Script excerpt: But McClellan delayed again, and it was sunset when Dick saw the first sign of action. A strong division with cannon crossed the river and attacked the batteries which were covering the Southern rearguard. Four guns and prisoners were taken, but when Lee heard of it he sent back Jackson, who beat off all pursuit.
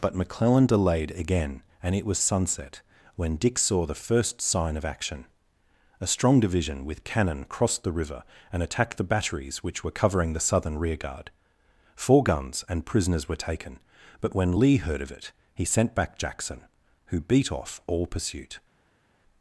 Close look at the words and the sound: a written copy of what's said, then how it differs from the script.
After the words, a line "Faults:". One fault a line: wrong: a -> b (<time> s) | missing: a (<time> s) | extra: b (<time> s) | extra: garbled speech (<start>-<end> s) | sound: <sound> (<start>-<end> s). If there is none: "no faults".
But McClellan delayed again, and it was sunset when Dick saw the first sign of action. A strong division with cannon crossed the river and attacked the batteries which were covering the Southern rearguard. Four guns and prisoners were taken, but when Lee heard of it he sent back Jackson, who beat off all pursuit.
Faults:
no faults